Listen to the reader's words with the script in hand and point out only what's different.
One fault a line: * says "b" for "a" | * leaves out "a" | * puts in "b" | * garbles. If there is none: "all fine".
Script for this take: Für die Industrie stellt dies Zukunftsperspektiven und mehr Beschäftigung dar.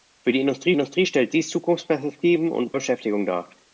* puts in "Industrie"
* leaves out "mehr"